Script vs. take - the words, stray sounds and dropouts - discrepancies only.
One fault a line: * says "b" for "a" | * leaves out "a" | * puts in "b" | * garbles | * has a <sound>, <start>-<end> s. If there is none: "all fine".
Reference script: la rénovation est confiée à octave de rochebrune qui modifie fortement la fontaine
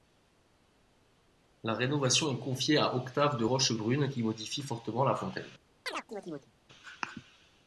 * has a chirp, 5.9-6.5 s